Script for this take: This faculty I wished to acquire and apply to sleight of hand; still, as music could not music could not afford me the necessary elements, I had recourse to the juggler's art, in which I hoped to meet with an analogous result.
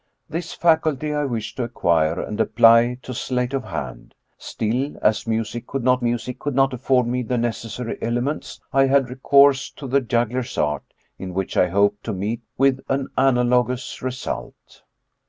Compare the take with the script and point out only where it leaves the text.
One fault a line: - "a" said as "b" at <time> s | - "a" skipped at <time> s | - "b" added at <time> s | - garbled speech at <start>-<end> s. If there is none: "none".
none